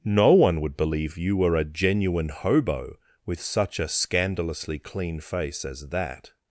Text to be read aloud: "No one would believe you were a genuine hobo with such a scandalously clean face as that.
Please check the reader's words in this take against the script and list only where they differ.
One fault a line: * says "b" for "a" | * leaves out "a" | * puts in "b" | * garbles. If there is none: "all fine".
all fine